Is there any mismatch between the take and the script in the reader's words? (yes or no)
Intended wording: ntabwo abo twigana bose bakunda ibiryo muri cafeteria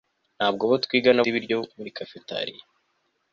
yes